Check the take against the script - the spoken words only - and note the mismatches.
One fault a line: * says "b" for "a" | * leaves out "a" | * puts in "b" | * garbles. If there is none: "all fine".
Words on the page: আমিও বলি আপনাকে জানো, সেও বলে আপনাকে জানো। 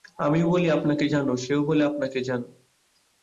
all fine